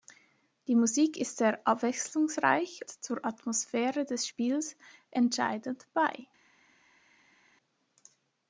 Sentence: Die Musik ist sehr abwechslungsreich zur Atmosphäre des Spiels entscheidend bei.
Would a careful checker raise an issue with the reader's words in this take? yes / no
no